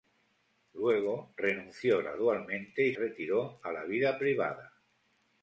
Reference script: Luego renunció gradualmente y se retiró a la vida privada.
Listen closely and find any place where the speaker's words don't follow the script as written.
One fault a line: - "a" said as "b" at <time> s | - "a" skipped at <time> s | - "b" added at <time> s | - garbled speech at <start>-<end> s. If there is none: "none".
- "se" skipped at 2.9 s